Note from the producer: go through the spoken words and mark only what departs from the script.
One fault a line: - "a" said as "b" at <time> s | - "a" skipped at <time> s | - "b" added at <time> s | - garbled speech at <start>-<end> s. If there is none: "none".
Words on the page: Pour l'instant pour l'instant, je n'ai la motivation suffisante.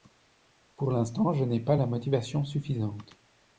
- "pour l'instant" skipped at 1.3 s
- "pas" added at 1.6 s